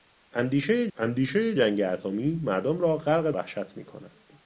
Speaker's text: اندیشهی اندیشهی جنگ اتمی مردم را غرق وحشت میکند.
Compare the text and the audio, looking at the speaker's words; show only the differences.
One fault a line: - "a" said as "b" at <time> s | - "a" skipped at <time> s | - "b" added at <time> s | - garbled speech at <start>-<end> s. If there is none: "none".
none